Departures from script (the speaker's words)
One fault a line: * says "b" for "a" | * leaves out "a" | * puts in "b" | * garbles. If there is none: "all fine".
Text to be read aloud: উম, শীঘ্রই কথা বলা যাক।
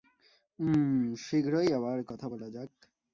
* puts in "আবার"